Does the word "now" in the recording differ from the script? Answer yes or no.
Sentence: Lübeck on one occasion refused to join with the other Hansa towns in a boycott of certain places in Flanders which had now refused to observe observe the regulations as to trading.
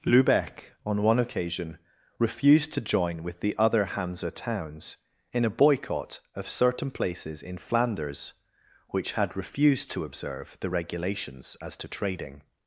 yes